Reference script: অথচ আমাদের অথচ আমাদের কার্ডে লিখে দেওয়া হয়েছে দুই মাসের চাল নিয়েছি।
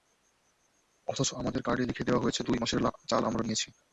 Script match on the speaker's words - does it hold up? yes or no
no